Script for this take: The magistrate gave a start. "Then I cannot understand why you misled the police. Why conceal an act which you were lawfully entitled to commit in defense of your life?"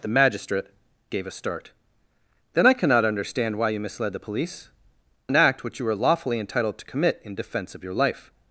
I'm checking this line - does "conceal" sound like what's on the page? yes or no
no